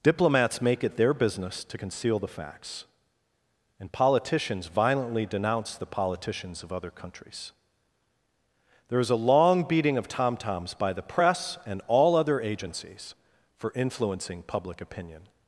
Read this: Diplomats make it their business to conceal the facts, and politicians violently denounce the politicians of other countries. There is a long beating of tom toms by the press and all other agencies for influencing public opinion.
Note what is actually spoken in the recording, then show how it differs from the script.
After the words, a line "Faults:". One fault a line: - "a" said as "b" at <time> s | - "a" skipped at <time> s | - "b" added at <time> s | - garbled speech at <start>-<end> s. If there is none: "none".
Diplomats make it their business to conceal the facts, and politicians violently denounce the politicians of other countries. There is a long beating of tom toms by the press and all other agencies for influencing public opinion.
Faults:
none